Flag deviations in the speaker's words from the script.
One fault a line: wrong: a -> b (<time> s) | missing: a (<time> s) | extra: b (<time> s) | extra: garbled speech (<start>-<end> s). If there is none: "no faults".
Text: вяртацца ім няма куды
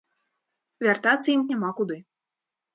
no faults